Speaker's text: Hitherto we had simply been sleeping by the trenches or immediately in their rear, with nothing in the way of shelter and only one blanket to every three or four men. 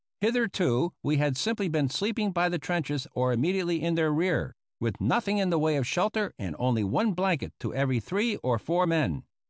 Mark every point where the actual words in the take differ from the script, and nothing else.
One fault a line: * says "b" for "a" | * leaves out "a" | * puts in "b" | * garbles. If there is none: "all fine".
all fine